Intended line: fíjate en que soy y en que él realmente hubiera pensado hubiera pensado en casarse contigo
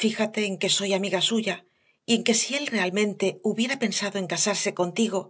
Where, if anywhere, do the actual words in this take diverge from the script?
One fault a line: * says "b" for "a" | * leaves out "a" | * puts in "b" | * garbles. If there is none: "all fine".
* puts in "amiga suya"
* puts in "si"
* leaves out "hubiera pensado"